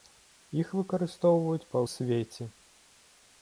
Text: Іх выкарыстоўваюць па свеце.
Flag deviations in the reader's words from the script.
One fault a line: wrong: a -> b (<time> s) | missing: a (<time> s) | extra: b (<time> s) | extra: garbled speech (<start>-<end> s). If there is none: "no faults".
no faults